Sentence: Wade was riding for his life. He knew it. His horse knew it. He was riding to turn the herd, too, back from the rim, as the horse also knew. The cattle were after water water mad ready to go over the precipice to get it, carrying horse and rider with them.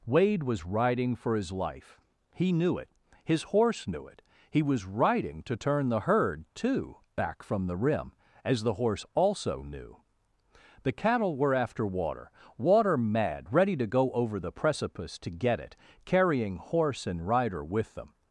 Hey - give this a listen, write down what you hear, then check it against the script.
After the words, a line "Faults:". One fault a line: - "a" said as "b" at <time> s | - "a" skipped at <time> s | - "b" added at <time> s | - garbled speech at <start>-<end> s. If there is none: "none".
Wade was riding for his life. He knew it. His horse knew it. He was riding to turn the herd, too, back from the rim, as the horse also knew. The cattle were after water water mad ready to go over the precipice to get it, carrying horse and rider with them.
Faults:
none